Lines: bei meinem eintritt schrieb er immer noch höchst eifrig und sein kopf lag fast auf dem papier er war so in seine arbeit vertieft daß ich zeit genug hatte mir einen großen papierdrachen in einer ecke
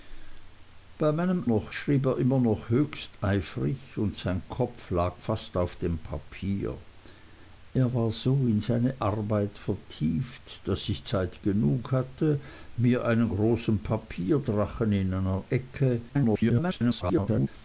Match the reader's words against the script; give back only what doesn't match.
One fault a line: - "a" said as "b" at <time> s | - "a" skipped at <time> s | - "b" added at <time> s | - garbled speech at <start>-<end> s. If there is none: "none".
- "eintritt" said as "noch" at 1.4 s
- garbled speech at 16.1-17.5 s